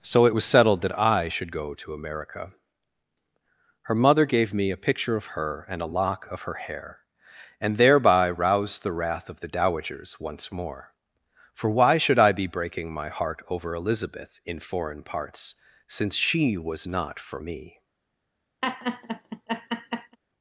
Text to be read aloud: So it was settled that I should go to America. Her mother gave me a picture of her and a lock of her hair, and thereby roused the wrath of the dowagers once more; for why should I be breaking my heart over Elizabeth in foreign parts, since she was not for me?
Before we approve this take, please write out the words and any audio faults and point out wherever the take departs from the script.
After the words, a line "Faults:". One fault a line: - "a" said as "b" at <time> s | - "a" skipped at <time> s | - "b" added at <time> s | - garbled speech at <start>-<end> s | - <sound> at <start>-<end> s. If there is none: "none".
So it was settled that I should go to America. Her mother gave me a picture of her and a lock of her hair, and thereby roused the wrath of the dowagers once more; for why should I be breaking my heart over Elizabeth in foreign parts, since she was not for me?
Faults:
- laugh at 18.6-20.2 s